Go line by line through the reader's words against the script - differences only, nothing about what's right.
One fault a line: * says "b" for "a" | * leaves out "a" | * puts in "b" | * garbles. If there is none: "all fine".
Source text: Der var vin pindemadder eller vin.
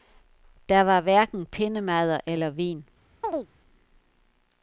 * says "hverken" for "vin"